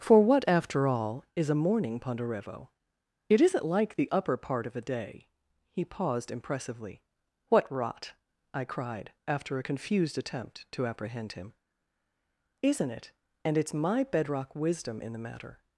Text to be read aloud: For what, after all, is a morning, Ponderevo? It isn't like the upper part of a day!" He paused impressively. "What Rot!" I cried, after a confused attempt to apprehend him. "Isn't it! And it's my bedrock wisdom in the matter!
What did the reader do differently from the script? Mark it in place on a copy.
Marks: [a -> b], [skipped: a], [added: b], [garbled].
For what, after all, is a morning, Ponderevo? It isn't like the upper part of a day!" He paused impressively. "What Rot!" I cried, after a confused attempt to apprehend him. "Isn't it! And it's my bedrock wisdom in the matter!